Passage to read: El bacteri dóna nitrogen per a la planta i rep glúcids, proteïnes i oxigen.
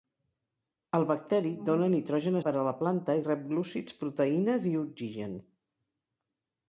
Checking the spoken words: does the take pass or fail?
pass